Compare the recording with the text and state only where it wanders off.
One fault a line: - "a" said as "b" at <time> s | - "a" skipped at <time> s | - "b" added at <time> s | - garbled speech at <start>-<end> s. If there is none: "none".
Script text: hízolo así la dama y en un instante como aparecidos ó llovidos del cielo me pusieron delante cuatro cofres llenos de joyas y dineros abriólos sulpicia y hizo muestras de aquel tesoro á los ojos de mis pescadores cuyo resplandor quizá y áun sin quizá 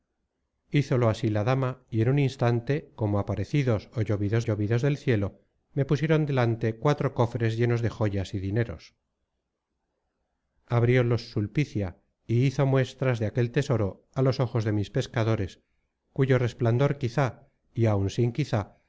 - "llovidos" added at 4.4 s